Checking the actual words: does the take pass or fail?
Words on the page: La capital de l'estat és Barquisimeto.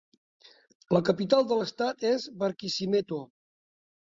pass